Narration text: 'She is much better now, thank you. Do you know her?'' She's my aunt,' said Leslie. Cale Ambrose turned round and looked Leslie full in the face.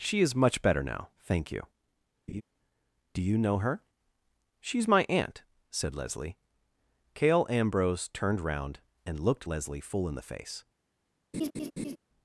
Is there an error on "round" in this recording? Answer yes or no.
no